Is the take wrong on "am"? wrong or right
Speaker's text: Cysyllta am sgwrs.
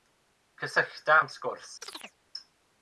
right